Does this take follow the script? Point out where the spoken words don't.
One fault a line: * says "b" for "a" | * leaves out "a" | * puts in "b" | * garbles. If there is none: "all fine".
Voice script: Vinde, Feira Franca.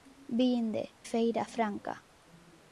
all fine